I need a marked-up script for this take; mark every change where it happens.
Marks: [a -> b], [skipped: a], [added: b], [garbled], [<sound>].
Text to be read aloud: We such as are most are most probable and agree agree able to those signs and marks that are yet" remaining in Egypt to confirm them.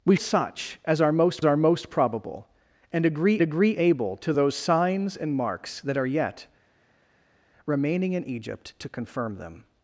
We such as are most are most probable and agree agree able to those signs and marks that are yet" remaining in Egypt to confirm them.